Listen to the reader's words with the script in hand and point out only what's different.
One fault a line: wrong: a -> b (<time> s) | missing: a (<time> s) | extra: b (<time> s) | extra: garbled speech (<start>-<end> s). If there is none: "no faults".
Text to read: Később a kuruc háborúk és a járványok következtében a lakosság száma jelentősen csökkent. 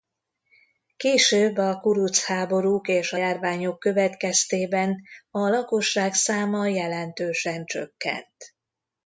no faults